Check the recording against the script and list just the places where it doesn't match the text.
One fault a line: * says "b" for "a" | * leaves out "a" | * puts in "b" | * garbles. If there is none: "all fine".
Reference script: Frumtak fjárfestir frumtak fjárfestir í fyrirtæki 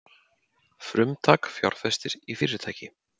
* leaves out "frumtak fjárfestir"